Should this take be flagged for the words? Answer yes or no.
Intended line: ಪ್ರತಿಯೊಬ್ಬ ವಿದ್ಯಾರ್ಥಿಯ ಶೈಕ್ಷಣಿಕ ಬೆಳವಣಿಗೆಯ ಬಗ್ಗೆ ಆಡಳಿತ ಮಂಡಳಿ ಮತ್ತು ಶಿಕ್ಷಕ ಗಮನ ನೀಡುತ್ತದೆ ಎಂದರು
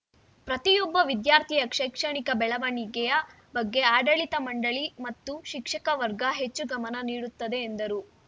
yes